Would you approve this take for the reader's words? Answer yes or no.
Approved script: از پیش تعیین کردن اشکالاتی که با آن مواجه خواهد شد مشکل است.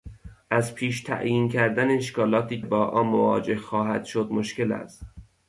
no